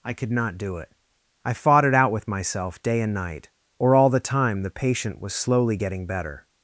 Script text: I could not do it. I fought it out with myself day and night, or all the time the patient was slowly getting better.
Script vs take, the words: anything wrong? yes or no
no